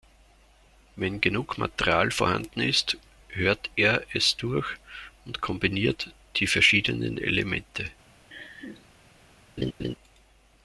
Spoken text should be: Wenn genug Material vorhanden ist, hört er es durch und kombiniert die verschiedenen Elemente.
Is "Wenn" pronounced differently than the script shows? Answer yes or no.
no